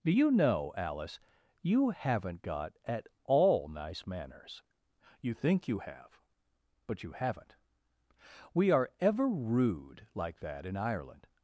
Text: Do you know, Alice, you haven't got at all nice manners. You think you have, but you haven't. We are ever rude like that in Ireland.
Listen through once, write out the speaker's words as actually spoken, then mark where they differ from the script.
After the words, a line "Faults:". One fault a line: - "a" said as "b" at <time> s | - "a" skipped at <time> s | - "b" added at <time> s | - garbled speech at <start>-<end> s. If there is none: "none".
Do you know, Alice, you haven't got at all nice manners. You think you have, but you haven't. We are ever rude like that in Ireland.
Faults:
none